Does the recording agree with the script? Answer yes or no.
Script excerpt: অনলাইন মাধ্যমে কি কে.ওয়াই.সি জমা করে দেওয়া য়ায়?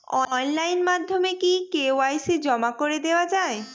yes